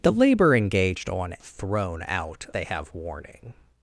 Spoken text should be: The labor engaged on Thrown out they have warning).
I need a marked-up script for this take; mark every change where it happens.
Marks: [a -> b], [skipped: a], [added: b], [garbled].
The labor engaged on Thrown out they have warning).